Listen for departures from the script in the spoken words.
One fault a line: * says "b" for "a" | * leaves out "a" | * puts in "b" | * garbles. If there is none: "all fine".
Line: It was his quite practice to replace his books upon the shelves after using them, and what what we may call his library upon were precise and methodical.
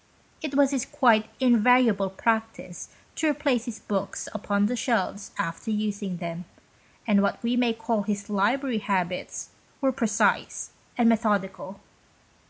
* puts in "invariable"
* leaves out "what"
* says "habits" for "upon"